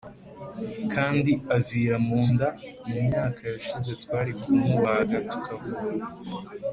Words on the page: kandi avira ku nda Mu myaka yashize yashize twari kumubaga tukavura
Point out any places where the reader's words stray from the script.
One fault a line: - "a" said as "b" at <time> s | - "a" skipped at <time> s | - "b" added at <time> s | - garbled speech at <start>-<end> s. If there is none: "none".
- "ku" said as "mu" at 2.1 s
- "yashize" skipped at 3.9 s